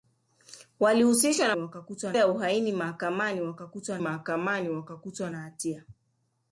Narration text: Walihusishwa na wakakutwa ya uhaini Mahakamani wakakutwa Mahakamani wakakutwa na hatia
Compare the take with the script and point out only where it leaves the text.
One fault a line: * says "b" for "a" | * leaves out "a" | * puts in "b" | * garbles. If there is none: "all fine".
all fine